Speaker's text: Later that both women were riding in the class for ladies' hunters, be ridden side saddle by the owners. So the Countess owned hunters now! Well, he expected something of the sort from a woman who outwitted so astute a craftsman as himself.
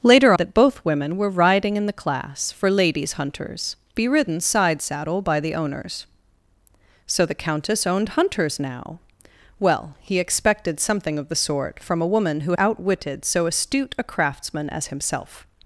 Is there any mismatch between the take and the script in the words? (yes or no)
no